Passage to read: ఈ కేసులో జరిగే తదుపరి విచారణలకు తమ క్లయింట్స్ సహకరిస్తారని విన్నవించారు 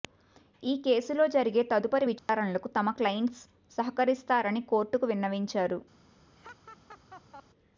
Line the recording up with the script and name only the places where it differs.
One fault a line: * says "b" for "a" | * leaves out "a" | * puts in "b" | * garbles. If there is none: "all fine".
* puts in "కోర్టుకు"